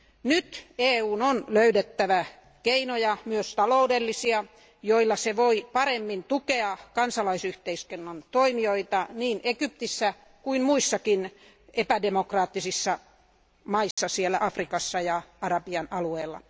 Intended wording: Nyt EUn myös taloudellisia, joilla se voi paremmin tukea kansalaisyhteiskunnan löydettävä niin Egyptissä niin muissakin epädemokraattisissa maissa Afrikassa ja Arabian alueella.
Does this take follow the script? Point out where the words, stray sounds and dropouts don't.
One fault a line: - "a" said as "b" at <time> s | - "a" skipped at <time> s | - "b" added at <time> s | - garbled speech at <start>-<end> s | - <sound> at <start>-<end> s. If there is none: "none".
- "on löydettävä keinoja" added at 1.2 s
- "löydettävä" said as "toimijoita" at 8.3 s
- "niin" said as "kuin" at 10.4 s
- dropout at 13.9-14.0 s